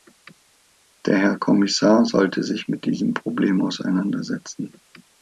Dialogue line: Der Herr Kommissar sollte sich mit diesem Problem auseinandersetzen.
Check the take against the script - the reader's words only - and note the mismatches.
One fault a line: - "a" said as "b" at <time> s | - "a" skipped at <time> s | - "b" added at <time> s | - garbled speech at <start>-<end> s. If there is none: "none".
none